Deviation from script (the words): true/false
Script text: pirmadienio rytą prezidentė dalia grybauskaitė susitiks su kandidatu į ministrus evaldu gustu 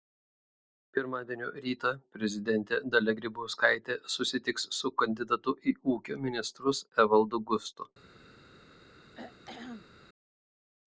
true